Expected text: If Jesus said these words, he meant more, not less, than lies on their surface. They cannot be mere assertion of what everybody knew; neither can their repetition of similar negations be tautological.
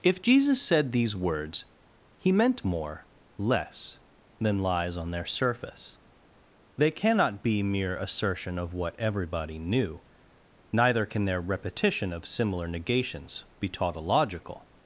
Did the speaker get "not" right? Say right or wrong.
wrong